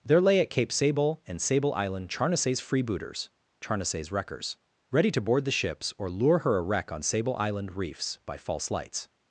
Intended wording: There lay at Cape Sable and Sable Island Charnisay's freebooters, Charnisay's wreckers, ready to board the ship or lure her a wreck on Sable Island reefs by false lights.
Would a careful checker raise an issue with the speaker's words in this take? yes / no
yes